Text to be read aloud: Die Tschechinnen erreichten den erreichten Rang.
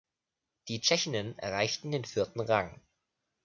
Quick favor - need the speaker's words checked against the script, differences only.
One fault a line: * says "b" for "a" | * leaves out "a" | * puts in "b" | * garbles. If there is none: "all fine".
* says "vierten" for "erreichten"